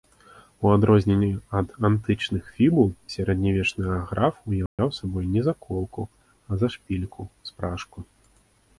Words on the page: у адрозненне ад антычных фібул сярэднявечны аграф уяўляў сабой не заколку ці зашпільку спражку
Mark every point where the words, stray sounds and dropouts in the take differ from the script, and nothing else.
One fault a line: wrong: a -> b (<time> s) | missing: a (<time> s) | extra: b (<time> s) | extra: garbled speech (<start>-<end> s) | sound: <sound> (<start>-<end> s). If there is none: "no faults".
sound: dropout (4.7-4.8 s)
wrong: ці -> а (6.5 s)